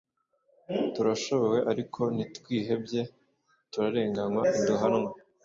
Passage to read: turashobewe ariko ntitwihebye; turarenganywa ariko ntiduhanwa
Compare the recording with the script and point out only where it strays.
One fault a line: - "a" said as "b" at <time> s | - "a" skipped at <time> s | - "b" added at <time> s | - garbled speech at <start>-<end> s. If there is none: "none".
- "ariko" skipped at 4.4 s